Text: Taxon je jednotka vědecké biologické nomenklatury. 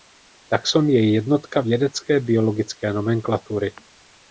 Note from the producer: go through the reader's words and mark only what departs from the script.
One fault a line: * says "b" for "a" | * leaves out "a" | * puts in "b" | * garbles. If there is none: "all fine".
all fine